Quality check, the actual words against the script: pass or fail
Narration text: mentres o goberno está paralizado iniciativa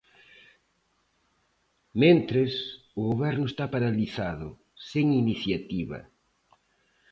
fail